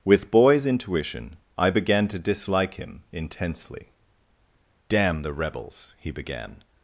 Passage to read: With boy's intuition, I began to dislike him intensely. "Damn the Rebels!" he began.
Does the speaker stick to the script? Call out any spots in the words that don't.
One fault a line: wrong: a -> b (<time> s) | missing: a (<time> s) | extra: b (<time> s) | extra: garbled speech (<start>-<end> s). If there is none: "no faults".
no faults